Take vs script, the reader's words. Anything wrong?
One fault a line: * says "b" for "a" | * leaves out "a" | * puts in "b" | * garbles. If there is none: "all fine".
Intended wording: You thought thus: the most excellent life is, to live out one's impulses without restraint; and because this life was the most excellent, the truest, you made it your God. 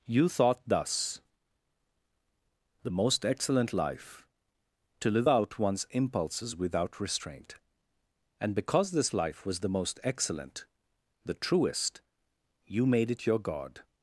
* leaves out "is"